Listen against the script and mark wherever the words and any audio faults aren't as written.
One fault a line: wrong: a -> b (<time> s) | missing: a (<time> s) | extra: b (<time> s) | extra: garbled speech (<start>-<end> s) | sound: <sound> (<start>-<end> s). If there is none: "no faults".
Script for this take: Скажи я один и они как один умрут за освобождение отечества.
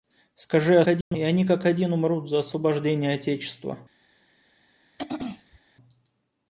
sound: dropout (1.0-1.1 s)
sound: throat clearing (5.0-5.6 s)